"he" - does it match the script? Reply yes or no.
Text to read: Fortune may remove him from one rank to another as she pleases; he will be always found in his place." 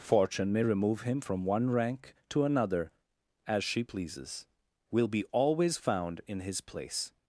no